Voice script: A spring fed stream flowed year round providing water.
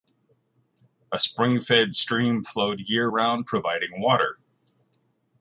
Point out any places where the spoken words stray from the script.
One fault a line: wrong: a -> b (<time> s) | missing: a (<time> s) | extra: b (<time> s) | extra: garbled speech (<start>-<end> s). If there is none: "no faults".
no faults